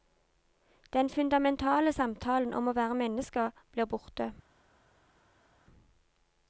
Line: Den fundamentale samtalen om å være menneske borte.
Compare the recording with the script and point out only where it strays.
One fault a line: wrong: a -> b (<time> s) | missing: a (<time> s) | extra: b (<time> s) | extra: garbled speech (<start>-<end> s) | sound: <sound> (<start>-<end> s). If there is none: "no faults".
extra: blir (3.7 s)